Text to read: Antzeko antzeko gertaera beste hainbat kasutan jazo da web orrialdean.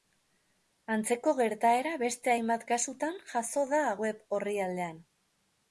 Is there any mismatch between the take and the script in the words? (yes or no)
yes